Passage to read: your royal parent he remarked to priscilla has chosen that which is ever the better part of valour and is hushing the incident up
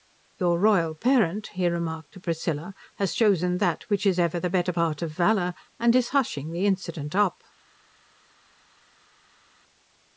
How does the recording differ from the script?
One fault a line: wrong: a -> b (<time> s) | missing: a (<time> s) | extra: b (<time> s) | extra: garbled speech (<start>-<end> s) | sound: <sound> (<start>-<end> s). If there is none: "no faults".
no faults